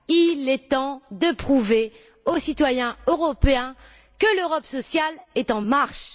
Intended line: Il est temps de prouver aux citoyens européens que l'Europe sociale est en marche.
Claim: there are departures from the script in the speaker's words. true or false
false